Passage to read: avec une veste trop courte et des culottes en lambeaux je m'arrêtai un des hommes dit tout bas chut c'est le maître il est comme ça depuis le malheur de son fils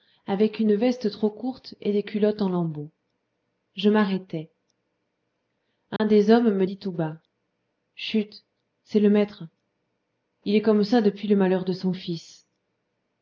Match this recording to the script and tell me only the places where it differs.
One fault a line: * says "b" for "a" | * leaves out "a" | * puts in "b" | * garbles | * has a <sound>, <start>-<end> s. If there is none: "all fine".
* has a dropout, 6.0-6.0 s
* puts in "me"